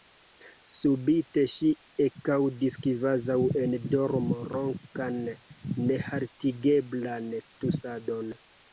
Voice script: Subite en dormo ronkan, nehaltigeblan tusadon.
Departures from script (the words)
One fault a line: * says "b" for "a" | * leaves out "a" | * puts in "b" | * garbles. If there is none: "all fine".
* puts in "ŝi ekaŭdis kvazaŭ"